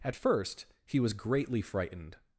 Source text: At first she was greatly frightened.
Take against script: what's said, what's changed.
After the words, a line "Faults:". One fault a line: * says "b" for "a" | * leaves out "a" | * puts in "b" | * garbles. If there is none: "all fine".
At first he was greatly frightened.
Faults:
* says "he" for "she"